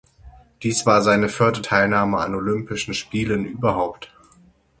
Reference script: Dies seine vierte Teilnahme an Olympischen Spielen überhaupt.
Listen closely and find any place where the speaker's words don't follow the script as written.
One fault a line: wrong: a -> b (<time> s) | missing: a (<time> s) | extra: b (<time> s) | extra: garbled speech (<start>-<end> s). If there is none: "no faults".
extra: war (0.9 s)